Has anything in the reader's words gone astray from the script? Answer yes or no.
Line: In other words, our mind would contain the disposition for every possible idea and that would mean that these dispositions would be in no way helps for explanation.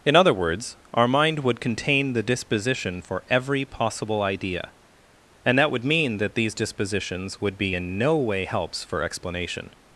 no